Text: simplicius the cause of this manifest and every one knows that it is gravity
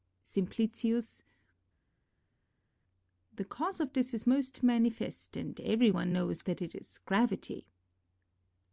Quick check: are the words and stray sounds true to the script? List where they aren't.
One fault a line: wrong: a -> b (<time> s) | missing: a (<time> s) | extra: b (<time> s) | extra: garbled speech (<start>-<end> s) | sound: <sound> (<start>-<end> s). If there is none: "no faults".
extra: is most (4.1 s)